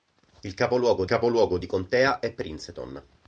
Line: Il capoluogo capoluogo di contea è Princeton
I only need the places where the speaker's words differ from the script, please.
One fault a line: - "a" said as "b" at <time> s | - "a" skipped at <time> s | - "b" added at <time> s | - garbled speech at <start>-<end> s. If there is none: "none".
none